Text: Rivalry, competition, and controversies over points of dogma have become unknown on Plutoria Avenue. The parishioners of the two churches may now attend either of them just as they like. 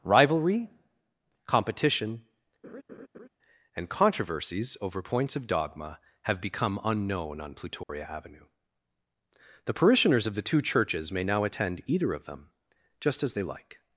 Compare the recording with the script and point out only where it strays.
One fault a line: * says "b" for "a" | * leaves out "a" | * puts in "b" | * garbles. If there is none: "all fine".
all fine